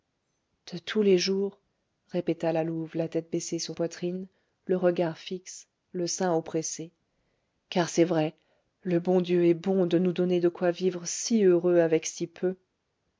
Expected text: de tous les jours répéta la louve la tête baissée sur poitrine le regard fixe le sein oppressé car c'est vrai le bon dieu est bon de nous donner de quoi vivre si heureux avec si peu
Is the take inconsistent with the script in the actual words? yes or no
no